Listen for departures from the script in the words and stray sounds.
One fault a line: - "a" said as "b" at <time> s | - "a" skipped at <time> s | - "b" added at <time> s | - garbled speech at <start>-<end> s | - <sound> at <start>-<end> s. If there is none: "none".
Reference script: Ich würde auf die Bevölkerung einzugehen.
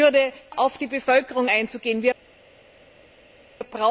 none